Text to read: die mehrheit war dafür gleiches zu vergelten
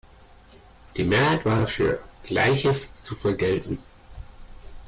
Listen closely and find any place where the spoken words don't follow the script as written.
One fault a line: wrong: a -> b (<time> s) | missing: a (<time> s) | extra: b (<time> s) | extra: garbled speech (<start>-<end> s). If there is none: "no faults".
no faults